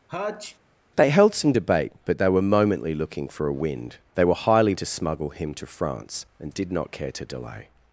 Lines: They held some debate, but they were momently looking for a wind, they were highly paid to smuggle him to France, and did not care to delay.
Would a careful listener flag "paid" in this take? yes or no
yes